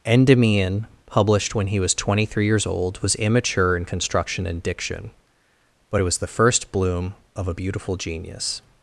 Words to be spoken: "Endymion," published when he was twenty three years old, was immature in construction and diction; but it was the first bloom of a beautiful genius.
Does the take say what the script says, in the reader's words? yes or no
yes